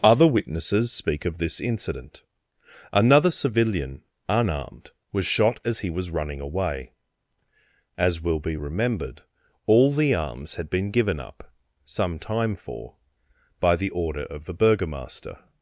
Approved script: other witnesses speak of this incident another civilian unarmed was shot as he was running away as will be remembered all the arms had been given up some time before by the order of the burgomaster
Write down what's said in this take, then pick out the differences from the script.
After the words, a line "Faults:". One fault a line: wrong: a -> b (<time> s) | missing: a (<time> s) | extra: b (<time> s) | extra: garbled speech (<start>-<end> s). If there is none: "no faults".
other witnesses speak of this incident another civilian unarmed was shot as he was running away as will be remembered all the arms had been given up some time for by the order of the burgomaster
Faults:
wrong: before -> for (12.5 s)